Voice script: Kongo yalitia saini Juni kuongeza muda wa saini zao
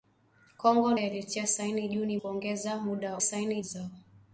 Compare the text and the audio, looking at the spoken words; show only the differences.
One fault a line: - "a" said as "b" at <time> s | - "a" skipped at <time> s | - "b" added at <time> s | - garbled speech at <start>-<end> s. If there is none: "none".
none